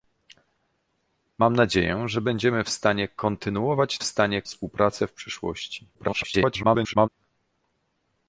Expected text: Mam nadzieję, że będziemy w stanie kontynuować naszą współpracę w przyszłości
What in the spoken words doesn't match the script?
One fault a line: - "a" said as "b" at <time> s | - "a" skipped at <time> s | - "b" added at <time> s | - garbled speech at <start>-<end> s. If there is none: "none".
- "naszą" said as "stanie" at 4.0 s
- garbled speech at 5.9-7.1 s